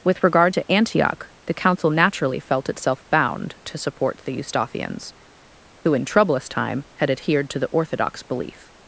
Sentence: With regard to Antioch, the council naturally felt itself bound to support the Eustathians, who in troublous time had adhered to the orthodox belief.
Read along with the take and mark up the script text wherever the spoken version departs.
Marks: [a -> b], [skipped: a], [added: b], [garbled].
With regard to Antioch, the council naturally felt itself bound to support the Eustathians, who in troublous time had adhered to the orthodox belief.